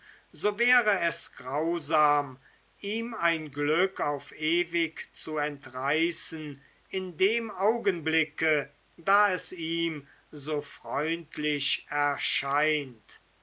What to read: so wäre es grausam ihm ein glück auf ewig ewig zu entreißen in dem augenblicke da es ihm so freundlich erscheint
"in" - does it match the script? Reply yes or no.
yes